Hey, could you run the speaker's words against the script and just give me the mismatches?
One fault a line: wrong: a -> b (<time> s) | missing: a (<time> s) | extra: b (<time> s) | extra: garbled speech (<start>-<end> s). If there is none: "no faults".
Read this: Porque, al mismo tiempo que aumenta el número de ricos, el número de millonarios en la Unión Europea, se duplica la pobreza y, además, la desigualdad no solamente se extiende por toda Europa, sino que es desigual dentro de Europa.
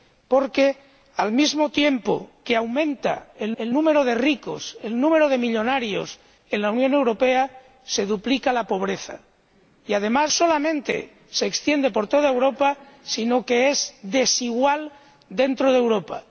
extra: el (3.6 s)
missing: la desigualdad no (10.3 s)